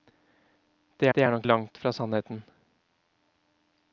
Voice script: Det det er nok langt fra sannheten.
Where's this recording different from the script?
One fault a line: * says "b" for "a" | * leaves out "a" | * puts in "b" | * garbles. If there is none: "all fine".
all fine